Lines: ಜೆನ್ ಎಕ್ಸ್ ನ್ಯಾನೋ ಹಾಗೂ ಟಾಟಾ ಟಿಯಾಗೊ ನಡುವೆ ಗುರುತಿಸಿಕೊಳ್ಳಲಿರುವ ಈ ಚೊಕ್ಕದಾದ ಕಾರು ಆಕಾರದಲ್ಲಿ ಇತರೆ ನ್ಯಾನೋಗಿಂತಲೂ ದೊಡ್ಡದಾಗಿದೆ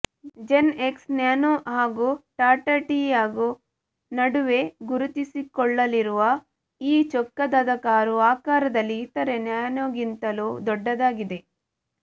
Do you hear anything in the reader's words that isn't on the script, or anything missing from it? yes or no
no